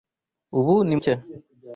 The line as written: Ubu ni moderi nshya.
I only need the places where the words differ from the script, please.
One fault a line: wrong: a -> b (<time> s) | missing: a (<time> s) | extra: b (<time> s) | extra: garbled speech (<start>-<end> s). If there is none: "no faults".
missing: moderi (0.9 s)